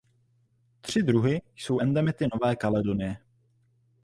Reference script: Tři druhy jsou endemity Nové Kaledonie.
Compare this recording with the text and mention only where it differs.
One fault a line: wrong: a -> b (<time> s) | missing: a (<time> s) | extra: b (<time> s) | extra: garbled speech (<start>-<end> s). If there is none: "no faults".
no faults